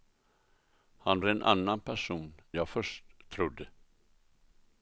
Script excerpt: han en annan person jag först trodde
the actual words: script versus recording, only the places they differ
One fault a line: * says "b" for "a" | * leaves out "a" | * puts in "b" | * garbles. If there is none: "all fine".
all fine